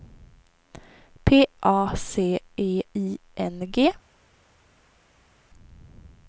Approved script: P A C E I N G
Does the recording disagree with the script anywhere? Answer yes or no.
no